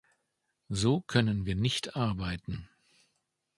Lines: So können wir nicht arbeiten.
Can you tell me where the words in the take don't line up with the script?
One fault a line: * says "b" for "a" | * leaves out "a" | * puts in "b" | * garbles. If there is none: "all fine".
all fine